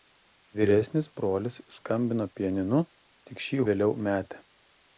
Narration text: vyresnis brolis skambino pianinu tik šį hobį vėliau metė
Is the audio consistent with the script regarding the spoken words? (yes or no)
no